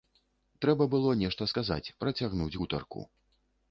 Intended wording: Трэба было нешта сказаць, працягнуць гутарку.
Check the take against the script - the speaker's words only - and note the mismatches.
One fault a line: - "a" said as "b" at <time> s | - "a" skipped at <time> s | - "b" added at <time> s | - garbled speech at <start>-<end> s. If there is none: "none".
none